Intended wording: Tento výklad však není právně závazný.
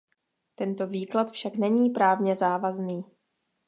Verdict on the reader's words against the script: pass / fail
pass